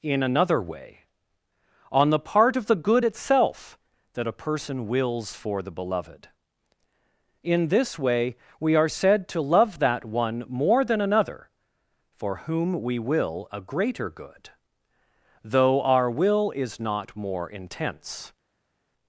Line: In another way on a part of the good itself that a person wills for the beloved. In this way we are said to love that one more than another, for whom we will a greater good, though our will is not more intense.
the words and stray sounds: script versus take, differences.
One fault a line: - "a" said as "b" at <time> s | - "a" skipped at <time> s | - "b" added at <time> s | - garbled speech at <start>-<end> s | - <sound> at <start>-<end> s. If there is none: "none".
- "a" said as "the" at 2.1 s